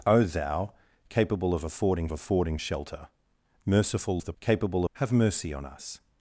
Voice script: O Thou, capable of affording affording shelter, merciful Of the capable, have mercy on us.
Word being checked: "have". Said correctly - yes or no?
yes